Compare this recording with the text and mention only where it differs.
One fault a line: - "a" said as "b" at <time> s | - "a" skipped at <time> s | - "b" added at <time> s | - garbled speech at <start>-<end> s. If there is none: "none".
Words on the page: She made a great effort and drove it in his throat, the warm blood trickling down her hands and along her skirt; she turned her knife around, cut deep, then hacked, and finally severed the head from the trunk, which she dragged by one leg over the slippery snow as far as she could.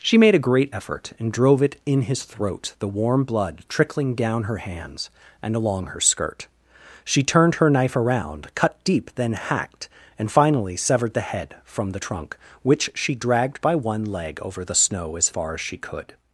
- "slippery" skipped at 14.7 s